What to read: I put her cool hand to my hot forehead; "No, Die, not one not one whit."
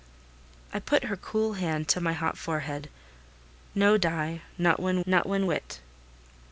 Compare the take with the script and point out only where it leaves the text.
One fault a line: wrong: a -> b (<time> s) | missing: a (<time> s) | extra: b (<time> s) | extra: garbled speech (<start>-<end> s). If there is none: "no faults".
no faults